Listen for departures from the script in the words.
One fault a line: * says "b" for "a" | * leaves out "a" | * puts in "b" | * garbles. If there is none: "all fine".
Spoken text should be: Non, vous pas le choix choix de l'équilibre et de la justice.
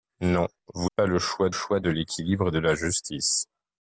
all fine